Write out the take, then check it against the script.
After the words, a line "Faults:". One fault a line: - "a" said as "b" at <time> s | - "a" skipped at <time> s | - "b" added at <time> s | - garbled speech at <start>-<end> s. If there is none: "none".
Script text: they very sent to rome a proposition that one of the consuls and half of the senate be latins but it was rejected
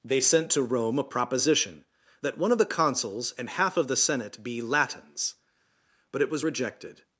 they sent to rome a proposition that one of the consuls and half of the senate be latins but it was rejected
Faults:
- "very" skipped at 0.2 s